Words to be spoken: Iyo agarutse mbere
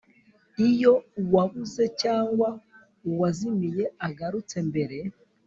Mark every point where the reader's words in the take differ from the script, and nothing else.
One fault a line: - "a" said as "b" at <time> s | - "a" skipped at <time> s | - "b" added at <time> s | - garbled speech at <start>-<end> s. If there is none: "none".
- "uwabuze cyangwa uwazimiye" added at 1.2 s